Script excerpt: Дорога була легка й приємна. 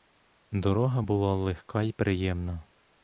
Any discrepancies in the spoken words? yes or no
no